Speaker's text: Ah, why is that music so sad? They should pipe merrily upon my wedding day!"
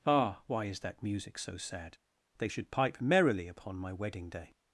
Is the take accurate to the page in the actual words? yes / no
yes